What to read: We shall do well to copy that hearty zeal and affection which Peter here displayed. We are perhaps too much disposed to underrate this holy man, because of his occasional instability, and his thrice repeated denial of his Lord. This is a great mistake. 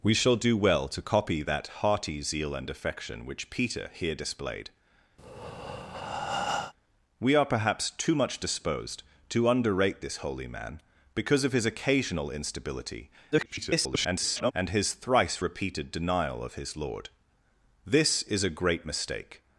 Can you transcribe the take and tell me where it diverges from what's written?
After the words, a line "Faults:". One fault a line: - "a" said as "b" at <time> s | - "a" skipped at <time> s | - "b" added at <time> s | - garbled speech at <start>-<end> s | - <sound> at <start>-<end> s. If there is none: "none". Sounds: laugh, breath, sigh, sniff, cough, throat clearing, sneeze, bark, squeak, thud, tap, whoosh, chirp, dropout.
We shall do well to copy that hearty zeal and affection which Peter here displayed. We are perhaps too much disposed to underrate this holy man, because of his occasional instability, [garbled] and his thrice repeated denial of his Lord. This is a great mistake.
Faults:
- breath at 5.2-6.7 s
- garbled speech at 13.3-14.5 s